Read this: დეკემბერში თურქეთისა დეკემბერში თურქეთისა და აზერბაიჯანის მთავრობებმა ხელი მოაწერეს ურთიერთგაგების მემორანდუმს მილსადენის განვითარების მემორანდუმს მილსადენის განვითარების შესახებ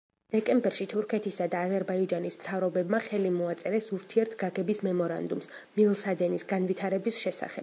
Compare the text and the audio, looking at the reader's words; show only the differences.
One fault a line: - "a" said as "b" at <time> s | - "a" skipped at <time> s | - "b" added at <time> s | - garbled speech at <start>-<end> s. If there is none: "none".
- "დეკემბერში თურქეთისა" skipped at 1.5 s
- "მემორანდუმს მილსადენის განვითარების" skipped at 7.2 s